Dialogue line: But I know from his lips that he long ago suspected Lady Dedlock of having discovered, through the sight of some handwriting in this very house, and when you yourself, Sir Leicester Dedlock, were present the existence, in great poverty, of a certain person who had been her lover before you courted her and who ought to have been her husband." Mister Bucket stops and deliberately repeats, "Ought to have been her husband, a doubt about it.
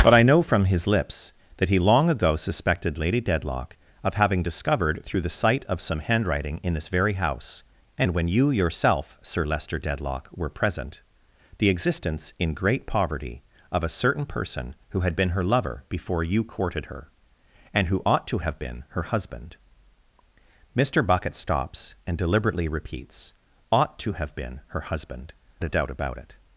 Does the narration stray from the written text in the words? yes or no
no